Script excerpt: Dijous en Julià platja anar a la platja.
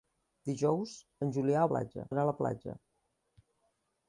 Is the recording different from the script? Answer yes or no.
no